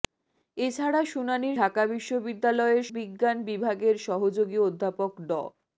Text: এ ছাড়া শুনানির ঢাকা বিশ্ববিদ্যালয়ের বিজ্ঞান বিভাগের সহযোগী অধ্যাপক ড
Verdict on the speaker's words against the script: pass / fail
pass